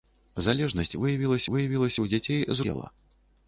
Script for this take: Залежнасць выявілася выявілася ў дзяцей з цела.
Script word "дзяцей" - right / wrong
right